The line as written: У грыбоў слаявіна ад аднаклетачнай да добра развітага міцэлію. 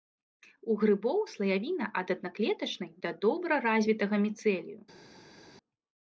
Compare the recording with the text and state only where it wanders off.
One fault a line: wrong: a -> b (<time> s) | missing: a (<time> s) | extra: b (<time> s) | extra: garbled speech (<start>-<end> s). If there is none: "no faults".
no faults